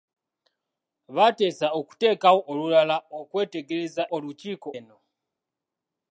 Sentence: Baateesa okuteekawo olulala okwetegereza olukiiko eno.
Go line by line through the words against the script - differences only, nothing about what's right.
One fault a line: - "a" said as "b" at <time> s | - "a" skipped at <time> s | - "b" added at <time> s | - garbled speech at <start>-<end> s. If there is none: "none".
none